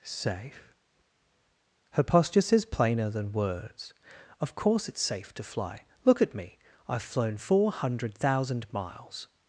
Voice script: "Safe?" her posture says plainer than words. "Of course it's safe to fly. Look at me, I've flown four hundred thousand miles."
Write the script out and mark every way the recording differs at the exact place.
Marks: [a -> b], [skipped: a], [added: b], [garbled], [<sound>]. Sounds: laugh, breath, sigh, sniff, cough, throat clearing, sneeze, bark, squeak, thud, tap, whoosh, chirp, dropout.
"Safe?" her posture says plainer than words. "Of course it's safe to fly. Look at me, I've flown four hundred thousand miles."